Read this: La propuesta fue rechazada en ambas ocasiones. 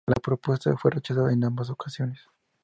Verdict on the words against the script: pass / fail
pass